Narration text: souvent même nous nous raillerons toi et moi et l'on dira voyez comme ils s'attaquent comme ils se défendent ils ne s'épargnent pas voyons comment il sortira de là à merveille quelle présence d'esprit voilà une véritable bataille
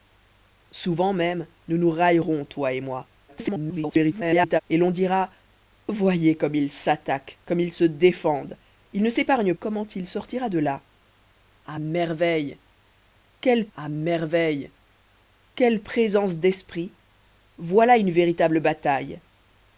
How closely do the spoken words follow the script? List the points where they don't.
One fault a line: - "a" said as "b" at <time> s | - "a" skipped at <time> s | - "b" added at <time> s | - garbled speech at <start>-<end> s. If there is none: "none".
- garbled speech at 3.3-4.6 s
- "pas voyons" skipped at 9.5 s
- "à merveille quelle" added at 13.7 s